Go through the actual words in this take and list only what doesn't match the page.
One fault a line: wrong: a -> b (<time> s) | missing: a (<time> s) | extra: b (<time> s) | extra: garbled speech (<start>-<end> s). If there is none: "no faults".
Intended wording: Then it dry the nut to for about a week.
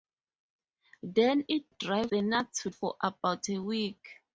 no faults